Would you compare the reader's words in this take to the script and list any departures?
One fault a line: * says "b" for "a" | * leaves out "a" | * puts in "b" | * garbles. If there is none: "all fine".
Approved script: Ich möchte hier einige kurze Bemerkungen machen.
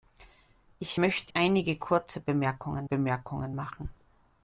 * leaves out "hier"
* puts in "Bemerkungen"